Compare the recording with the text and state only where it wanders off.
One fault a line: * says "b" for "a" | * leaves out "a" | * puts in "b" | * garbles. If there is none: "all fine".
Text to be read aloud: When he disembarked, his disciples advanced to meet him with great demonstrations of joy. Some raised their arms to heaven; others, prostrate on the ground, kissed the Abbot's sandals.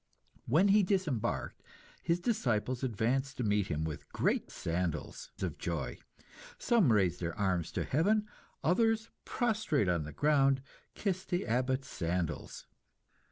* says "sandals" for "demonstrations"